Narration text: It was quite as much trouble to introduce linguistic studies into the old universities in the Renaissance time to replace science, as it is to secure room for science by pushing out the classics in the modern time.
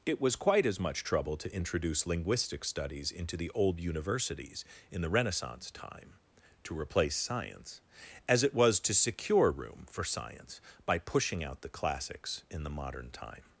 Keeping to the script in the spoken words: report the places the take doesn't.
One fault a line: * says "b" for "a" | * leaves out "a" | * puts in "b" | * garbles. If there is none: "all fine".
* says "was" for "is"